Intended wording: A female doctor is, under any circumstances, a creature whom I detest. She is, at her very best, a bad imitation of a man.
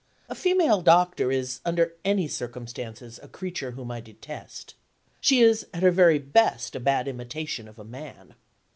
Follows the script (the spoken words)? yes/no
yes